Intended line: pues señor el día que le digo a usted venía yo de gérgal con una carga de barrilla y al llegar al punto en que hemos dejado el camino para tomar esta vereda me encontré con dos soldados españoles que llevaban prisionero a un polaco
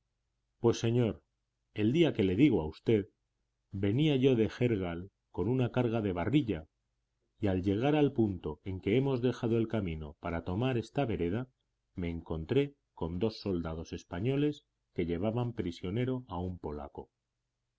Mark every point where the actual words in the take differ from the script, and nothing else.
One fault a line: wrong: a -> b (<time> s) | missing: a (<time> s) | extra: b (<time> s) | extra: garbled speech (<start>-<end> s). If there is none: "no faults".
no faults